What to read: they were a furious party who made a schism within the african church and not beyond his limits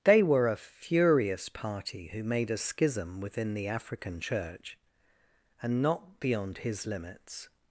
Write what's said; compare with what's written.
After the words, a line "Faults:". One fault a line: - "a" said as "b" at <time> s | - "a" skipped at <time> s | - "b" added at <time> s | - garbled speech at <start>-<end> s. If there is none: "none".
they were a furious party who made a schism within the african church and not beyond his limits
Faults:
none